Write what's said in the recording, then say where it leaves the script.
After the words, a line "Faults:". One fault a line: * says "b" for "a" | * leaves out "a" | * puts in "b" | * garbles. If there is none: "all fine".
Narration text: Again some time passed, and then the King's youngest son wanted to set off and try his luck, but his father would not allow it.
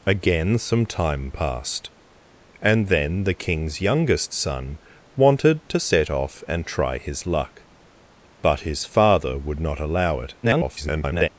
Again some time passed, and then the King's youngest son wanted to set off and try his luck, but his father would not allow it. [garbled]
Faults:
* garbles